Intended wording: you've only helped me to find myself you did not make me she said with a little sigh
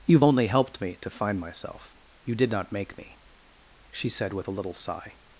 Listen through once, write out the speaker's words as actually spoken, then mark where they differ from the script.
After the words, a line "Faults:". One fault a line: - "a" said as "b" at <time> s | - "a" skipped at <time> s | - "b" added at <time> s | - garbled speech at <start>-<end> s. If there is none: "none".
you've only helped me to find myself you did not make me she said with a little sigh
Faults:
none